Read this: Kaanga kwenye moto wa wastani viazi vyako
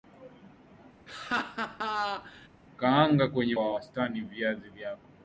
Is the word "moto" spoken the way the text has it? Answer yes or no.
no